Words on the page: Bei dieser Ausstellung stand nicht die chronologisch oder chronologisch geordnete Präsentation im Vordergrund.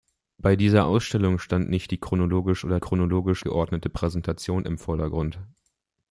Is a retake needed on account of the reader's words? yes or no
no